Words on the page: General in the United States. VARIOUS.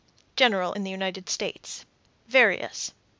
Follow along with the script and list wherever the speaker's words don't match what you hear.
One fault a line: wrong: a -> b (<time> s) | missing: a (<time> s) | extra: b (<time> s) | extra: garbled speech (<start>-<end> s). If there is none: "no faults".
no faults